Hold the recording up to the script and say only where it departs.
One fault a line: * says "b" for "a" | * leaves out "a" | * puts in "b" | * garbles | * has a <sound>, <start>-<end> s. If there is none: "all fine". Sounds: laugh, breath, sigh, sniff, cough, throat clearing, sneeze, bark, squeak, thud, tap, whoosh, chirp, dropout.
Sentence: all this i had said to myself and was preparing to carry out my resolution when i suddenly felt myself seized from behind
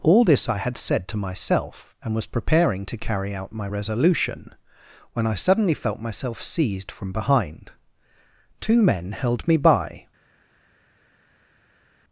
* puts in "two men held me by"